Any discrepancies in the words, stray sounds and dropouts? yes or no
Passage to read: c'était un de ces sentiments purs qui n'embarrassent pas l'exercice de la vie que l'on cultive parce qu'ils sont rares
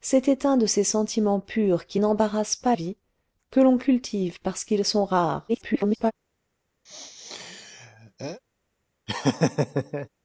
yes